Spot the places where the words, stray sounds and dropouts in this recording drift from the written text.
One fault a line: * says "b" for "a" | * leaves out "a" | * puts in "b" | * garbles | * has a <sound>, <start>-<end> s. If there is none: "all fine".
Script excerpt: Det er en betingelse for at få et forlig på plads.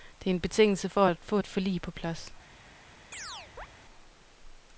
* has a chirp, 3.1-3.7 s